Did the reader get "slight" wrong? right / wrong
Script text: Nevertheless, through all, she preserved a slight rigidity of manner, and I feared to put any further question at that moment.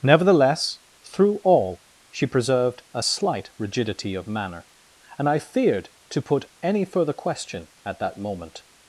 right